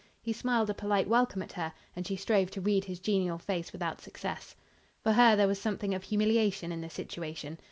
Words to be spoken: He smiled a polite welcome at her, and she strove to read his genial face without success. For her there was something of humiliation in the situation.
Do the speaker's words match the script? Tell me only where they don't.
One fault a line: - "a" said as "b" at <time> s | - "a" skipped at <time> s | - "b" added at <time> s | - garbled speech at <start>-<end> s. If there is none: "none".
none